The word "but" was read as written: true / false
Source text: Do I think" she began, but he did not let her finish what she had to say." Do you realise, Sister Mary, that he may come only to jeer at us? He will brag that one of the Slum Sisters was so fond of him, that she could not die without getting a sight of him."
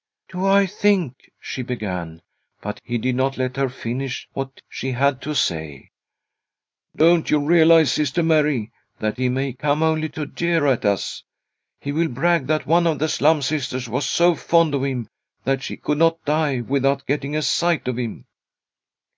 true